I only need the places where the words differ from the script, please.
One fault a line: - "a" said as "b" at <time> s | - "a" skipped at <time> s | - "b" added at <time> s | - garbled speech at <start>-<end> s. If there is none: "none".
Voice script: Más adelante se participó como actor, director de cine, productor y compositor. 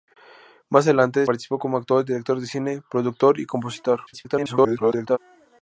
- "se" skipped at 1.3 s
- garbled speech at 4.1-5.2 s